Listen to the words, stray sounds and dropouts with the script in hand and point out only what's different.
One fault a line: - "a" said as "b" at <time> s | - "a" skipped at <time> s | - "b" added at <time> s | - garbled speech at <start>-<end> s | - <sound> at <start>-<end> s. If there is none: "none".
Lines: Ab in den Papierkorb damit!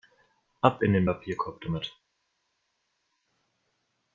none